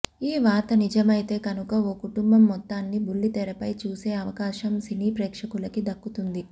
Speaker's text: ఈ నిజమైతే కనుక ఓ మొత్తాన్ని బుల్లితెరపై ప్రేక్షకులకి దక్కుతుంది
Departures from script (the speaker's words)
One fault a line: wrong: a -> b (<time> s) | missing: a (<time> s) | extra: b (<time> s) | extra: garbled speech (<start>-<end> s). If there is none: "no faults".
extra: వార్త (0.4 s)
extra: కుటుంబం (2.0 s)
extra: చూసే అవకాశం సినీ (3.8 s)